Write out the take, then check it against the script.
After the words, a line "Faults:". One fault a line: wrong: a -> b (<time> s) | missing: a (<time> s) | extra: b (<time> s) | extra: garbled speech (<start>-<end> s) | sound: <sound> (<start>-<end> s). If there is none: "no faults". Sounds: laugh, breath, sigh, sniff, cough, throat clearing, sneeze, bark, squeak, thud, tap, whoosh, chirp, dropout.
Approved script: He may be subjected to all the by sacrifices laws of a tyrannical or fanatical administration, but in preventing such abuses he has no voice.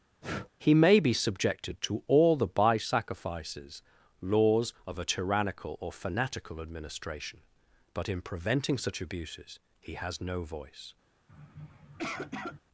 He may be subjected to all the by sacrifices laws of a tyrannical or fanatical administration, but in preventing such abuses he has no voice.
Faults:
sound: breath (0.2-0.5 s)
sound: sniff (11.3-12.6 s)